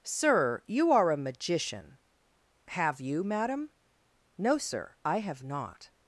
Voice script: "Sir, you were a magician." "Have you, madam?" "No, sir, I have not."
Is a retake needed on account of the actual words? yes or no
yes